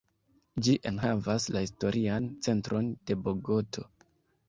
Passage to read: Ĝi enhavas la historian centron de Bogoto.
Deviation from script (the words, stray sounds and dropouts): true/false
false